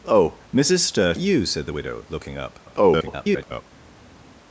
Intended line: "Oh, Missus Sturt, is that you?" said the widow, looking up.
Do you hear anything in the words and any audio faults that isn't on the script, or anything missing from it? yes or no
yes